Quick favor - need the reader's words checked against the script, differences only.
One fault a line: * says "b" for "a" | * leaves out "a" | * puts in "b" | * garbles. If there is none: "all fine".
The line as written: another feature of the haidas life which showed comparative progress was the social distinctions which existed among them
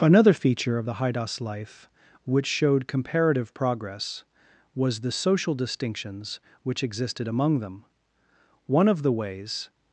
* puts in "one of the ways"